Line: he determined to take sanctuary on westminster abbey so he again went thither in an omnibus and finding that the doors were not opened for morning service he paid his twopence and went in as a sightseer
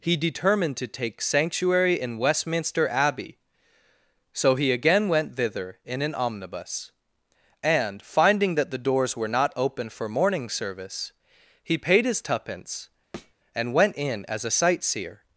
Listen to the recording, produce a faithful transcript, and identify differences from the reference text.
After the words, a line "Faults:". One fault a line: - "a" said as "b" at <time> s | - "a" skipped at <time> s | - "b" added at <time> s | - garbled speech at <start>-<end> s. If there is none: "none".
he determined to take sanctuary in westminster abbey so he again went thither in an omnibus and finding that the doors were not open for morning service he paid his twopence and went in as a sightseer
Faults:
- "on" said as "in" at 2.0 s
- "opened" said as "open" at 9.6 s